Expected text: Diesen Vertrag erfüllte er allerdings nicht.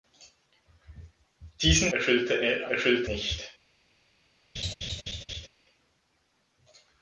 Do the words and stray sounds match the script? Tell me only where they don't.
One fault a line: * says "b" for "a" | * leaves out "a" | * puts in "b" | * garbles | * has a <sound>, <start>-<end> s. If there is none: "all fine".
* leaves out "Vertrag"
* says "erfüllte" for "allerdings"
* has a laugh, 4.6-5.5 s